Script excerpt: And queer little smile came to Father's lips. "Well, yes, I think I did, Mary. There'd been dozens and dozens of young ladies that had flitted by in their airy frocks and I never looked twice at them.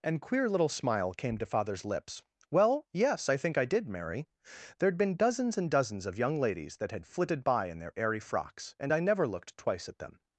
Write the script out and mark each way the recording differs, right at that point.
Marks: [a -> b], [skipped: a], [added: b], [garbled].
And queer little smile came to Father's lips. "Well, yes, I think I did, Mary. There'd been dozens and dozens of young ladies that had flitted by in their airy frocks and I never looked twice at them.